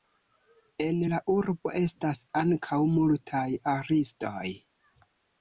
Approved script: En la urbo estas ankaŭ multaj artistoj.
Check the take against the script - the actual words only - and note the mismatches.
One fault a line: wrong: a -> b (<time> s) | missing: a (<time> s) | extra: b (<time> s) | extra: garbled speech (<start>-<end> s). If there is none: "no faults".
no faults